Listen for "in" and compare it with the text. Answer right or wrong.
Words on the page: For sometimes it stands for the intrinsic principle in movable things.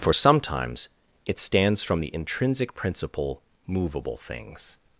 wrong